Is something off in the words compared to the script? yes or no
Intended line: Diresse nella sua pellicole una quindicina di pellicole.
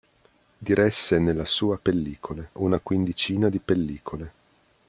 no